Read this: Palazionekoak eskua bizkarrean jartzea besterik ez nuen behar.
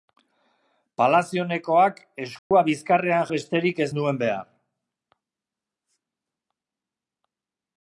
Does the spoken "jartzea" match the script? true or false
false